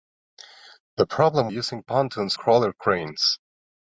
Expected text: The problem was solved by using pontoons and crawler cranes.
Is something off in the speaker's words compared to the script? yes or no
yes